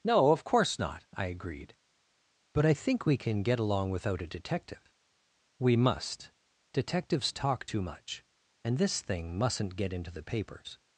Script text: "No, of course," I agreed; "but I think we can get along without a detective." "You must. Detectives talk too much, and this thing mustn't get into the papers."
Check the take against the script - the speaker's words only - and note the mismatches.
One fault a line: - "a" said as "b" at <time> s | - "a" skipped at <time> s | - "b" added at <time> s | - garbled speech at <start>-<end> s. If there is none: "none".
- "not" added at 0.8 s
- "You" said as "We" at 5.6 s